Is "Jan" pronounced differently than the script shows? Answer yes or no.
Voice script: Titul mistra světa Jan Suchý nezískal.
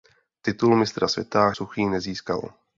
yes